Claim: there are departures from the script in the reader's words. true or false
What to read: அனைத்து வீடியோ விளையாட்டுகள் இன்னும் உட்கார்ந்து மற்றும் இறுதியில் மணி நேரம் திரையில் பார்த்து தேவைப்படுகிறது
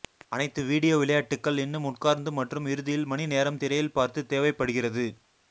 false